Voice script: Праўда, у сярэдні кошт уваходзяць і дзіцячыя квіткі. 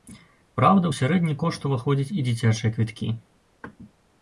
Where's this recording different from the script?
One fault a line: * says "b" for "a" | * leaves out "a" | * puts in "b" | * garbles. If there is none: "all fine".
all fine